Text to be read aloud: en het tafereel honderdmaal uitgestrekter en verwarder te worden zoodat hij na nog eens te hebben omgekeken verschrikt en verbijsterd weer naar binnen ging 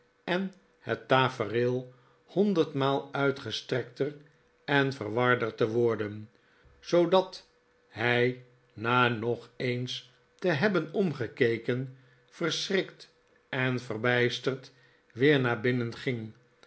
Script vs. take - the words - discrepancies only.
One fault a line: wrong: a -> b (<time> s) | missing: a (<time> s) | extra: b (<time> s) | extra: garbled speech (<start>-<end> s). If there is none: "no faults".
no faults